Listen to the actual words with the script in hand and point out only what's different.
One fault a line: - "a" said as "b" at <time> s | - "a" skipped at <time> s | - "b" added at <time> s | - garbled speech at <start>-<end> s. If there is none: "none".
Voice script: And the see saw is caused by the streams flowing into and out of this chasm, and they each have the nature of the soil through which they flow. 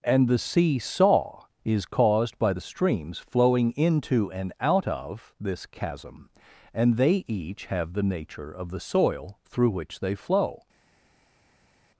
none